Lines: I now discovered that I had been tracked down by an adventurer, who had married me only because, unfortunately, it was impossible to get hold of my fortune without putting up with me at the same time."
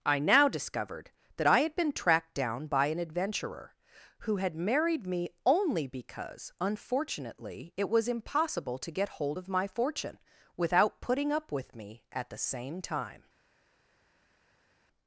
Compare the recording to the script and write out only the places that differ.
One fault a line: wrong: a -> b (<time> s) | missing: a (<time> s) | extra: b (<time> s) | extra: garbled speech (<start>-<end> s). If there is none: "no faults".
no faults